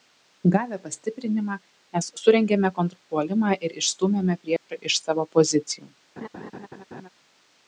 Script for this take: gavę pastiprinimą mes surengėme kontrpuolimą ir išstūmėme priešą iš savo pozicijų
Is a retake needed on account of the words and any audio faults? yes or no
yes